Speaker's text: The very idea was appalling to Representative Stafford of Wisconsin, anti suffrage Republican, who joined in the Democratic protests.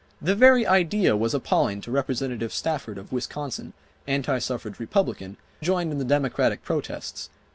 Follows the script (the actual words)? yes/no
no